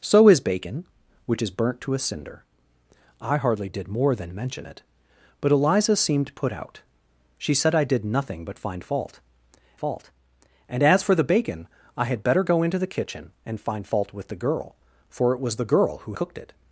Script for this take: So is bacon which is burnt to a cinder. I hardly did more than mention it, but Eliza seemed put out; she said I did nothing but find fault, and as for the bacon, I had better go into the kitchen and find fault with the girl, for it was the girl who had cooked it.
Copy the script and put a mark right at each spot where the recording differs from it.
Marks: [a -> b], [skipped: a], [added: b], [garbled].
So is bacon which is burnt to a cinder. I hardly did more than mention it, but Eliza seemed put out; she said I did nothing but find fault, [added: fault] and as for the bacon, I had better go into the kitchen and find fault with the girl, for it was the girl who [skipped: had] cooked it.